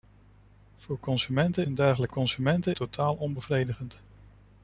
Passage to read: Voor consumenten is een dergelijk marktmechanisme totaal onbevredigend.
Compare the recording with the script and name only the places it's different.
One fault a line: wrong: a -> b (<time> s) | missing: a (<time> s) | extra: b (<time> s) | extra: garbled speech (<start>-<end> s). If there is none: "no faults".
missing: is (1.7 s)
wrong: marktmechanisme -> consumenten (2.1 s)